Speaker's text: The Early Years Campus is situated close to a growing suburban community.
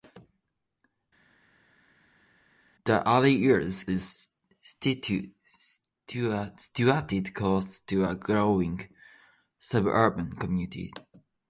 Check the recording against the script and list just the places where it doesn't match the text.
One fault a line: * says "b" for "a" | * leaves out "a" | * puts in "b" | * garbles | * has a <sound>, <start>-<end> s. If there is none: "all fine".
* leaves out "Campus"